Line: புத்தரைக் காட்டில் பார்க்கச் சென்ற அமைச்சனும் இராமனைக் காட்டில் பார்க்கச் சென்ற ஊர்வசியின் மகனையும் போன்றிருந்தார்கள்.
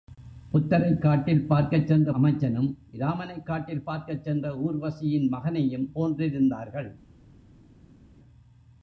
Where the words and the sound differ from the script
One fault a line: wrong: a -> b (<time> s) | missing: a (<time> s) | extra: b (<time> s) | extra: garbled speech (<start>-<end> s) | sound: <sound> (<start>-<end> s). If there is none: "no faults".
no faults